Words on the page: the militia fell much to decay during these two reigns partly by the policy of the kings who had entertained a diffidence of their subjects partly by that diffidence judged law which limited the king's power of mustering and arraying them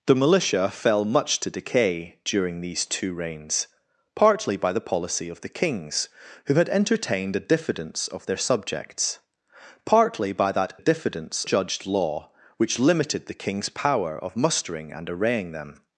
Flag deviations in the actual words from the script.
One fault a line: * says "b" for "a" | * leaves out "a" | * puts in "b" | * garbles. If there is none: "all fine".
all fine